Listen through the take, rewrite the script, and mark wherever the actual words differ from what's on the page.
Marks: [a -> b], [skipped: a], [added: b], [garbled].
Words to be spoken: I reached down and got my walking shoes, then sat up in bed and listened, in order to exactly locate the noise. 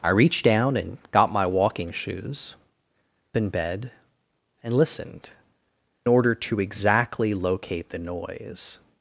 I reached down and got my walking shoes, [skipped: then sat up] in bed and listened, [skipped: in] order to exactly locate the noise.